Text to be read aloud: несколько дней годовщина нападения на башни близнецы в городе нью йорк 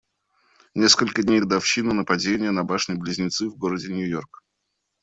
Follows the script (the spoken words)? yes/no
yes